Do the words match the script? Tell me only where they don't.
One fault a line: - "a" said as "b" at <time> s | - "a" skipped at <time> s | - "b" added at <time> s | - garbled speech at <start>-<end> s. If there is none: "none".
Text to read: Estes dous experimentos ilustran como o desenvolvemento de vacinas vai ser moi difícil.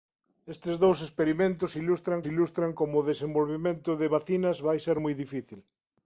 - "ilustran" added at 2.3 s